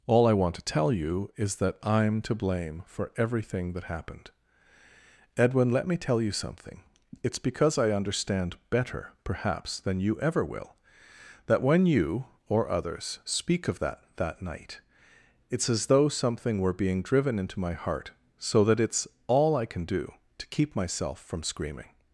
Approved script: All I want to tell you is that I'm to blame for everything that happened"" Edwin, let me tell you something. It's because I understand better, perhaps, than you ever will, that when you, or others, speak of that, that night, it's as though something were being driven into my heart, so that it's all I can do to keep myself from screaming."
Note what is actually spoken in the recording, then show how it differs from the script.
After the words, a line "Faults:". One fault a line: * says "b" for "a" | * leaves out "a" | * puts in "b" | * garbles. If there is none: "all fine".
All I want to tell you is that I'm to blame for everything that happened"" Edwin, let me tell you something. It's because I understand better, perhaps, than you ever will, that when you, or others, speak of that, that night, it's as though something were being driven into my heart, so that it's all I can do to keep myself from screaming."
Faults:
all fine